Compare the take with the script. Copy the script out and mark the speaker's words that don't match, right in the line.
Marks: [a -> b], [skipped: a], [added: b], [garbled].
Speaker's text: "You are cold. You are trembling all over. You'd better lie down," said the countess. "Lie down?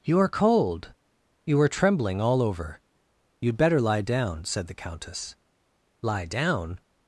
"You are cold. You are trembling all over. You'd better lie down," said the countess. "Lie down?